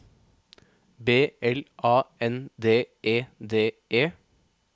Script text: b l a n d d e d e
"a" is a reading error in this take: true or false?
false